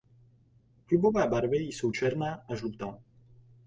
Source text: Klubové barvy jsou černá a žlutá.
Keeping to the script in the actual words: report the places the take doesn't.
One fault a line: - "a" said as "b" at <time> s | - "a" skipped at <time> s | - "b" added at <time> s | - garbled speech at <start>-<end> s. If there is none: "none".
none